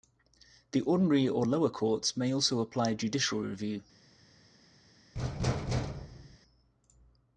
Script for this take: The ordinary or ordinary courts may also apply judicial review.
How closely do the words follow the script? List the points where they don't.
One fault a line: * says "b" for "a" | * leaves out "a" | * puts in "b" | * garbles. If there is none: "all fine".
* says "lower" for "ordinary"